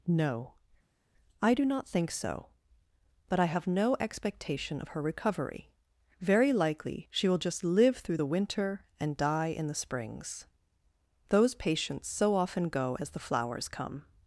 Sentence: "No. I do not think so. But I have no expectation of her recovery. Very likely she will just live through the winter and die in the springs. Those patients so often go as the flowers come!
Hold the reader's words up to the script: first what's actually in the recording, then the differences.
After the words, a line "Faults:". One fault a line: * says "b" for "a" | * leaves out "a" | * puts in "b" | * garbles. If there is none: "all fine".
"No. I do not think so. But I have no expectation of her recovery. Very likely she will just live through the winter and die in the springs. Those patients so often go as the flowers come!
Faults:
all fine